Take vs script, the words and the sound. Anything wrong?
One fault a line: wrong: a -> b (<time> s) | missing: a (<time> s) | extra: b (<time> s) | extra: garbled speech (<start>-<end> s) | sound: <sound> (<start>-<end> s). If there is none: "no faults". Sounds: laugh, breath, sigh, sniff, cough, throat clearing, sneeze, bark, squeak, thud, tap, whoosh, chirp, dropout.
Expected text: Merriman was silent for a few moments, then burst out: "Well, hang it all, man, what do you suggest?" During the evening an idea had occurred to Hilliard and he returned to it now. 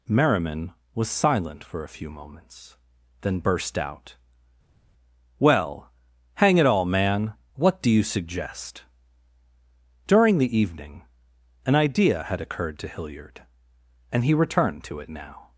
no faults